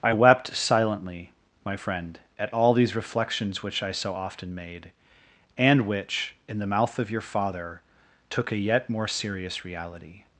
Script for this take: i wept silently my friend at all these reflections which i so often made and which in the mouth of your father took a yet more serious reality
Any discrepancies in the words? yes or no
no